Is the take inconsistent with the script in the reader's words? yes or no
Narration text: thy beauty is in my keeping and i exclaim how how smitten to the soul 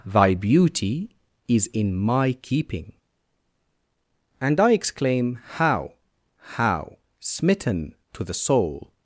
no